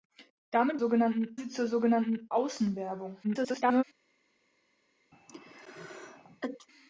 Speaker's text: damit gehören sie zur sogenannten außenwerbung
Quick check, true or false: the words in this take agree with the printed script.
false